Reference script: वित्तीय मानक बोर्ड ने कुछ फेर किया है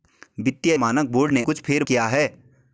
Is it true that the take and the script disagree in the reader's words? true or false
false